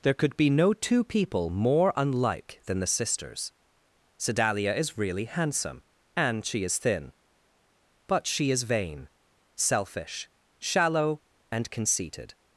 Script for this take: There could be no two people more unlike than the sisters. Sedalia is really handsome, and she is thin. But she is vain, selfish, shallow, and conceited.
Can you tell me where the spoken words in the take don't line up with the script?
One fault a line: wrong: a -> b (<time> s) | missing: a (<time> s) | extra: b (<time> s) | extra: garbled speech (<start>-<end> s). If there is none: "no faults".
no faults